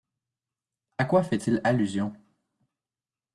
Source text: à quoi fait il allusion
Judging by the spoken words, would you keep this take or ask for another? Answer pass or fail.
pass